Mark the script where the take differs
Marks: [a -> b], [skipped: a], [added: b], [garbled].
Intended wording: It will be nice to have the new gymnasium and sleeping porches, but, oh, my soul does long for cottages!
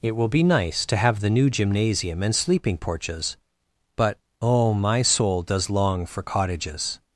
It will be nice to have the new gymnasium and sleeping porches, but, oh, my soul does long for cottages!